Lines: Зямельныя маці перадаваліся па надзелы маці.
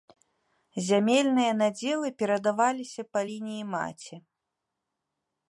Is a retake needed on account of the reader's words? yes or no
yes